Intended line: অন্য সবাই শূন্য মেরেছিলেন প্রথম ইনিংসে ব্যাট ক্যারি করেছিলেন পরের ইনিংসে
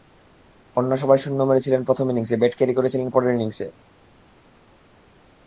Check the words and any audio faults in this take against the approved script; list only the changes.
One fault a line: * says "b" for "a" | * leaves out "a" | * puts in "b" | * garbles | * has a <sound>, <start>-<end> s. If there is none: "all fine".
all fine